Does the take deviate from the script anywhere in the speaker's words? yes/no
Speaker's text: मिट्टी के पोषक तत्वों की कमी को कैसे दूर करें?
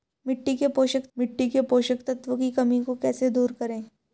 yes